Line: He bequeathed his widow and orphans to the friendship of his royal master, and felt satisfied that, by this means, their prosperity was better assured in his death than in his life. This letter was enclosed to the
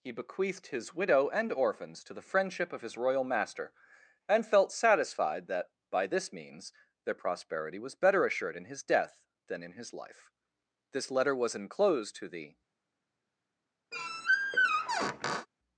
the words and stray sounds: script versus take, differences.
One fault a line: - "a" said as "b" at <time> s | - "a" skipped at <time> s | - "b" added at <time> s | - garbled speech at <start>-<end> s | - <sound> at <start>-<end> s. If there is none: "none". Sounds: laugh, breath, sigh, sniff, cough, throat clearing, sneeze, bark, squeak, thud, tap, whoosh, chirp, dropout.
- squeak at 13.9-15.5 s